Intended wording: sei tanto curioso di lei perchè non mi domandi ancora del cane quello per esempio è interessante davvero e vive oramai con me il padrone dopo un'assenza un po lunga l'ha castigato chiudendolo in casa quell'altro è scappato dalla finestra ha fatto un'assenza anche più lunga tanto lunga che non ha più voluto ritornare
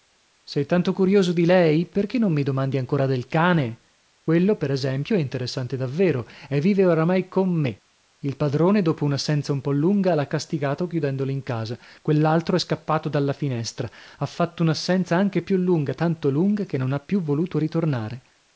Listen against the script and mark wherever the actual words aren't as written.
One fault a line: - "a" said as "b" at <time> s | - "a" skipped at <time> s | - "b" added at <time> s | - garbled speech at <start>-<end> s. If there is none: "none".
none